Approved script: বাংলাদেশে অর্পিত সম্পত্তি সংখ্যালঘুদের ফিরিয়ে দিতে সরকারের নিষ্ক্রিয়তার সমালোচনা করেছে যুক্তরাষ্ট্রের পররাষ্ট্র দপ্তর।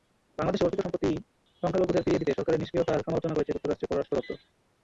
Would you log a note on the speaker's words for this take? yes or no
no